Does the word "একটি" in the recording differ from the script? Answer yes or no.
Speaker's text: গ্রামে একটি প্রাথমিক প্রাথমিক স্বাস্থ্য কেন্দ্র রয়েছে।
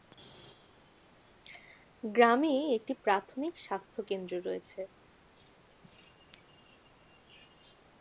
no